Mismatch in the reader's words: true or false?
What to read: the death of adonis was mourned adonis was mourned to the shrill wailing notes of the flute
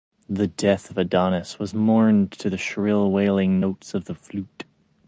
true